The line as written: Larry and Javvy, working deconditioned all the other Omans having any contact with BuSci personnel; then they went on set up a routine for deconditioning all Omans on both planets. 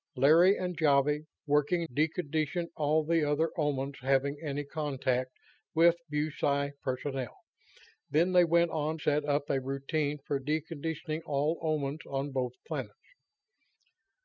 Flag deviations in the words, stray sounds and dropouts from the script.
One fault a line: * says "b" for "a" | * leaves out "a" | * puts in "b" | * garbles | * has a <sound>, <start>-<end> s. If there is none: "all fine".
all fine